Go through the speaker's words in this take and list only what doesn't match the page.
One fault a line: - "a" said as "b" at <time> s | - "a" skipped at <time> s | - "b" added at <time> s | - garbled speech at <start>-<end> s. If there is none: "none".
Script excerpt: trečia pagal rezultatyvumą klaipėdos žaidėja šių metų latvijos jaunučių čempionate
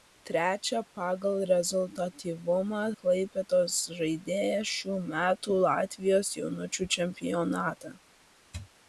none